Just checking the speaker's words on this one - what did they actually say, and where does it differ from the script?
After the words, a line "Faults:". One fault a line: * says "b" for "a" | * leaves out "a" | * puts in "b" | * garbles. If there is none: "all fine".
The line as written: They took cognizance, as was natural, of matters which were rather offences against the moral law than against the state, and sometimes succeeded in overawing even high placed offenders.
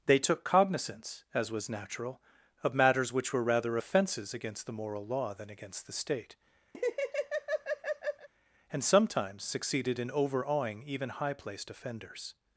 They took cognizance, as was natural, of matters which were rather offences against the moral law than against the state, and sometimes succeeded in overawing even high placed offenders.
Faults:
all fine